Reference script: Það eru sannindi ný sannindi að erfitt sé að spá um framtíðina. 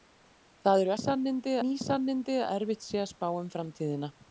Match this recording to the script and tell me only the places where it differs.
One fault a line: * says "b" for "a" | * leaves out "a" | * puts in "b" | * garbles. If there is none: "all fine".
all fine